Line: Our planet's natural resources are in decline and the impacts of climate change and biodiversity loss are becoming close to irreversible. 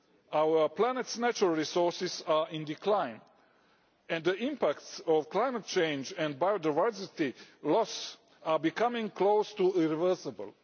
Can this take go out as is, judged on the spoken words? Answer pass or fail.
pass